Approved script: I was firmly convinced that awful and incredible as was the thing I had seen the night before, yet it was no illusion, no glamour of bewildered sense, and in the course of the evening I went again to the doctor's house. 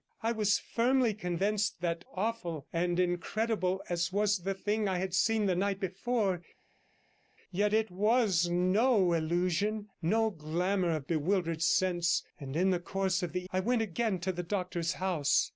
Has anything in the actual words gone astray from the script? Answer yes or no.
yes